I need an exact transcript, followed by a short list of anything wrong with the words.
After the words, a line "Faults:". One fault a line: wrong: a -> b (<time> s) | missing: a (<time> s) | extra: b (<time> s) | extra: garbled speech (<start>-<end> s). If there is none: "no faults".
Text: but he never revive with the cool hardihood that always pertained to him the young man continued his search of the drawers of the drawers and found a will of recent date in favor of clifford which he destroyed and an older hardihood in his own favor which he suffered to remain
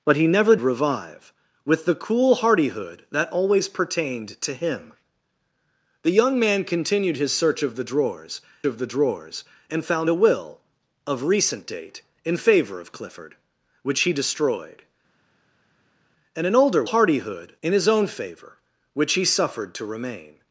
but he never revive with the cool hardihood that always pertained to him the young man continued his search of the drawers of the drawers and found a will of recent date in favor of clifford which he destroyed and an older hardihood in his own favor which he suffered to remain
Faults:
no faults